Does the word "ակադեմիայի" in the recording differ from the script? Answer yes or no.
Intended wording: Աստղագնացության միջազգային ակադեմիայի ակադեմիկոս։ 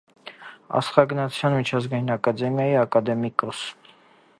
no